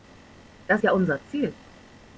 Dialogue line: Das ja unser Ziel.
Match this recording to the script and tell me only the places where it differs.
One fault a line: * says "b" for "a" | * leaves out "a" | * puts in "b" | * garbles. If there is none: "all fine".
all fine